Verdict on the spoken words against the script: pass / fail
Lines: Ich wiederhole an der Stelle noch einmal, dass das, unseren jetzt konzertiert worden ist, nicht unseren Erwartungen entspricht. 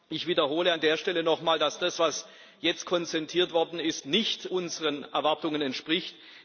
fail